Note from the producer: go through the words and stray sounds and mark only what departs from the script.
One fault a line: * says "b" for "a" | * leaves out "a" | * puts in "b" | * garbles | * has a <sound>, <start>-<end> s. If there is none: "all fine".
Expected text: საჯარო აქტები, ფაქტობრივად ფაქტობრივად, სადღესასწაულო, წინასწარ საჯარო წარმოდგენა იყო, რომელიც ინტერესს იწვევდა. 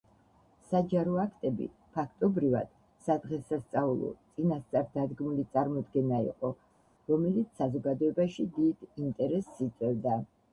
* leaves out "ფაქტობრივად"
* says "დადგმული" for "საჯარო"
* puts in "საზოგადოებაში დიდ"